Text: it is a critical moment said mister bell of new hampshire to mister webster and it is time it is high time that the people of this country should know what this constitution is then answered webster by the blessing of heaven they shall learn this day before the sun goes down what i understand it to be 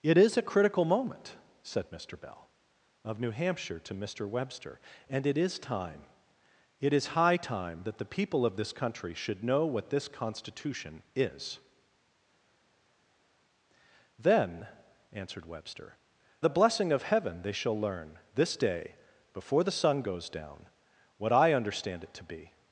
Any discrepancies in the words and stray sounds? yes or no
yes